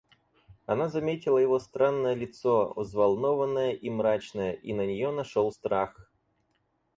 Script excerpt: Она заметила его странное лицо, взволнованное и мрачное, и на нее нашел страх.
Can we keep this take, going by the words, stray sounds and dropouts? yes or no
yes